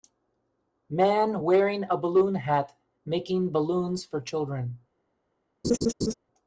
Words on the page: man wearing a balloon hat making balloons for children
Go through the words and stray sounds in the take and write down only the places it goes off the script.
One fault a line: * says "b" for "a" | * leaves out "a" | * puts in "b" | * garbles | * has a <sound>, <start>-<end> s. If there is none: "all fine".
* has a laugh, 5.6-6.1 s